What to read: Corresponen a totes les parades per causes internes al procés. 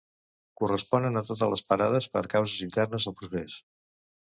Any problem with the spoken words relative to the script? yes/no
no